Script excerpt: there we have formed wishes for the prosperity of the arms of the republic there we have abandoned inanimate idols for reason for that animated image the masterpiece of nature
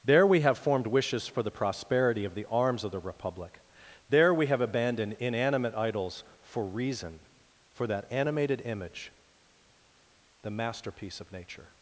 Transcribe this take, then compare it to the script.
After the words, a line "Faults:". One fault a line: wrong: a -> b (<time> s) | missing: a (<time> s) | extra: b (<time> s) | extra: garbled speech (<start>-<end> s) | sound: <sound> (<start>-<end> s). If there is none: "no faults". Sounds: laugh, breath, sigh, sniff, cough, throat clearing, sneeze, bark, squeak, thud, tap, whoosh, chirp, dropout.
there we have formed wishes for the prosperity of the arms of the republic there we have abandoned inanimate idols for reason for that animated image the masterpiece of nature
Faults:
no faults